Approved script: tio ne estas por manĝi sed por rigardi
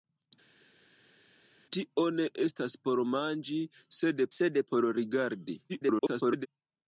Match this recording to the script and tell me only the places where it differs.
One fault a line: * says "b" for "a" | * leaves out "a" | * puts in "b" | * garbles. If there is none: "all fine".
* puts in "sed"
* garbles